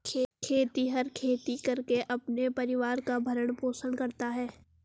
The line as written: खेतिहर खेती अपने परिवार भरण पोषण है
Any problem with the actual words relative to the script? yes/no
yes